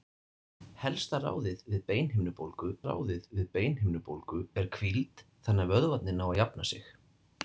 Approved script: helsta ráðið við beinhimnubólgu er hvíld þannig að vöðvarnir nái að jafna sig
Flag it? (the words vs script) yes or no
yes